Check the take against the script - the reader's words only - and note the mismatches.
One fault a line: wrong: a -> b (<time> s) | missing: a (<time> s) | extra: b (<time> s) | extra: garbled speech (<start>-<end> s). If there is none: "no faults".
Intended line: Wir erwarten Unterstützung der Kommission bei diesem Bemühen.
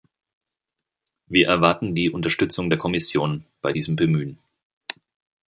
extra: die (1.9 s)